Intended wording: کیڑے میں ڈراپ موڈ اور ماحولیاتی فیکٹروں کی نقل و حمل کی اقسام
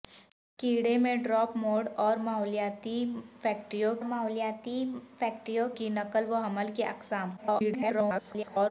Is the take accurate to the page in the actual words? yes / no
no